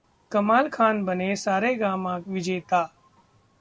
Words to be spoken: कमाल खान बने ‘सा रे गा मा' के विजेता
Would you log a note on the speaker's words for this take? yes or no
yes